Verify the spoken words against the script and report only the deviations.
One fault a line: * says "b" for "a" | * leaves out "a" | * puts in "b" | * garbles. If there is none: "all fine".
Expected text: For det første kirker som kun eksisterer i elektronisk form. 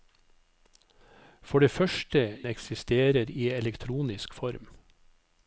* leaves out "kirker som kun"